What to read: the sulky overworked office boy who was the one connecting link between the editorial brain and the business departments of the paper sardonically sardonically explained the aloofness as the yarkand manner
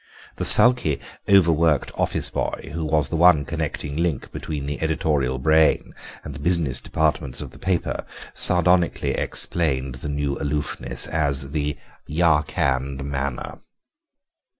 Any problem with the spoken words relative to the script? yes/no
yes